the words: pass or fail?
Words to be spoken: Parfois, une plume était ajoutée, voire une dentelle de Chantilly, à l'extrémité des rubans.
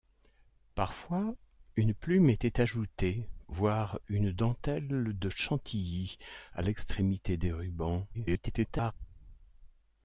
fail